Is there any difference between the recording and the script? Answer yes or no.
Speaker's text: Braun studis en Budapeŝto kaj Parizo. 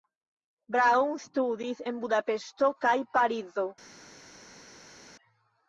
no